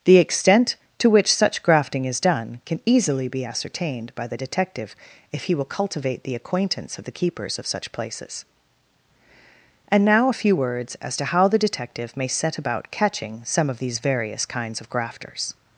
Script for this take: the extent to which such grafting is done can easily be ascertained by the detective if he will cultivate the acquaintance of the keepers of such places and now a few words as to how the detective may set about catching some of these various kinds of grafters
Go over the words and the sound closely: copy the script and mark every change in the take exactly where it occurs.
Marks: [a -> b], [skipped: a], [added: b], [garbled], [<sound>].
the extent to which such grafting is done can easily be ascertained by the detective if he will cultivate the acquaintance of the keepers of such places and now a few words as to how the detective may set about catching some of these various kinds of grafters